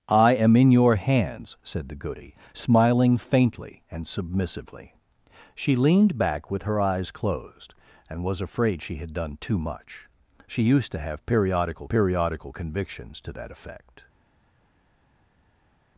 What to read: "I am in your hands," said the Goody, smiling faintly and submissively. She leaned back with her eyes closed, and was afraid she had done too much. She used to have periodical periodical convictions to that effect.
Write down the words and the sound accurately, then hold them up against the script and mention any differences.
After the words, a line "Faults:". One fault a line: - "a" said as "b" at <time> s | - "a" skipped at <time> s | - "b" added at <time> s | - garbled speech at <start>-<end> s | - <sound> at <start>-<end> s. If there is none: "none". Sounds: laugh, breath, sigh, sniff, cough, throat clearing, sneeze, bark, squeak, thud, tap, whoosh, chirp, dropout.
"I am in your hands," said the Goody, smiling faintly and submissively. She leaned back with her eyes closed, and was afraid she had done too much. She used to have periodical periodical convictions to that effect.
Faults:
none